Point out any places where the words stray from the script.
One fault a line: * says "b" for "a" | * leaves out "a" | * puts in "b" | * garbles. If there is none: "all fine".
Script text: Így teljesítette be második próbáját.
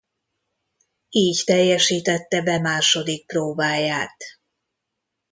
all fine